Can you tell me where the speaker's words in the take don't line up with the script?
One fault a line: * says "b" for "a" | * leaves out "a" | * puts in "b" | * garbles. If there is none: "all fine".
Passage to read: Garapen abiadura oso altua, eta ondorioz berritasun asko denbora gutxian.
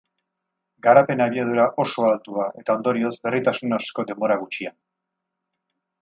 all fine